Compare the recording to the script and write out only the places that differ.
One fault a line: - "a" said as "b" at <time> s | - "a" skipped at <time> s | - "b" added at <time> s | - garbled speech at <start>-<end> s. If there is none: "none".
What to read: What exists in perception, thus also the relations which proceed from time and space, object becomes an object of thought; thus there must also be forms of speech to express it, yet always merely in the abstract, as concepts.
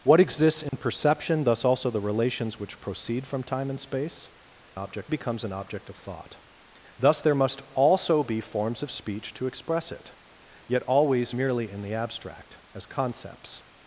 none